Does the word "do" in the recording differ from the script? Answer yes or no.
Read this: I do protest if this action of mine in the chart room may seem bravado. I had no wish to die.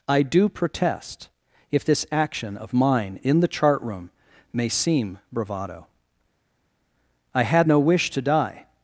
no